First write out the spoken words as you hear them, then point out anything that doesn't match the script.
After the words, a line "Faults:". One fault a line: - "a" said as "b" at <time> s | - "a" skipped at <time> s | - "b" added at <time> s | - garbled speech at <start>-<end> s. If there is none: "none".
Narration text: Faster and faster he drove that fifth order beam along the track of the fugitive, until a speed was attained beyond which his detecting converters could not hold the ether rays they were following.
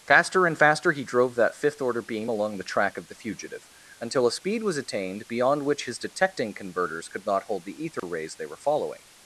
Faster and faster he drove that fifth order beam along the track of the fugitive, until a speed was attained beyond which his detecting converters could not hold the ether rays they were following.
Faults:
none